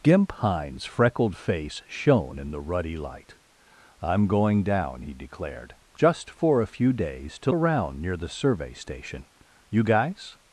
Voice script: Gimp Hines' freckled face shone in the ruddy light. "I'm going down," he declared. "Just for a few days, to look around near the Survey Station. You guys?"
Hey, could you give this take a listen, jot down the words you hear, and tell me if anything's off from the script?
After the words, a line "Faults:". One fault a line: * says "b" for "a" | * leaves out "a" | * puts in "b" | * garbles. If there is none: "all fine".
Gimp Hines' freckled face shone in the ruddy light. "I'm going down," he declared. "Just for a few days, to around near the Survey Station. You guys?"
Faults:
* leaves out "look"